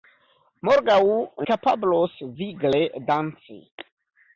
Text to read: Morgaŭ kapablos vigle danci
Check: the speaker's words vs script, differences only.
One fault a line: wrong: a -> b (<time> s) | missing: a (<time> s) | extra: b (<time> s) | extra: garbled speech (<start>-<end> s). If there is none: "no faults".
no faults